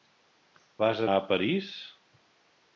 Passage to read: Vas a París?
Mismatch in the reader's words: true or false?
false